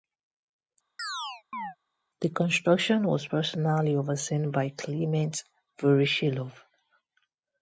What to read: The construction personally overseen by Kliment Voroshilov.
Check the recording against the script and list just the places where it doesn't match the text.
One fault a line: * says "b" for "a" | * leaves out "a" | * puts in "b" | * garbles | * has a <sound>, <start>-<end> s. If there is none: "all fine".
* has a chirp, 1.0-1.8 s
* puts in "was"